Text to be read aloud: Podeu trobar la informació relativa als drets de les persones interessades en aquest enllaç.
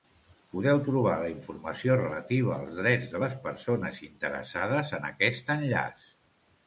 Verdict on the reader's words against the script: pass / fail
pass